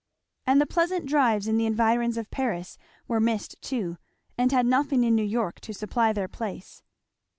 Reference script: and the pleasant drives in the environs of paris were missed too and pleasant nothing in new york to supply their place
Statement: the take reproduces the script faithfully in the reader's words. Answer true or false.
false